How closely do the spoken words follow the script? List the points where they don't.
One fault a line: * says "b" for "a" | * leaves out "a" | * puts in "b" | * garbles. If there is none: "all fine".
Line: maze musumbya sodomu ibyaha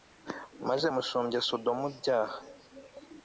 all fine